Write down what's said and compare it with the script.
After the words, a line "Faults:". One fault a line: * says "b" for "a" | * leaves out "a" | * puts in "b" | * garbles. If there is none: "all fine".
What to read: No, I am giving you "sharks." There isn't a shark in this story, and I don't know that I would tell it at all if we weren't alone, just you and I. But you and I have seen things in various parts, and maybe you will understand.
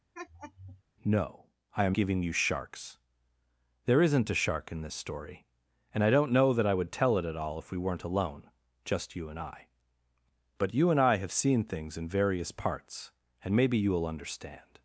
No, I am giving you "sharks." There isn't a shark in this story, and I don't know that I would tell it at all if we weren't alone, just you and I. But you and I have seen things in various parts, and maybe you will understand.
Faults:
all fine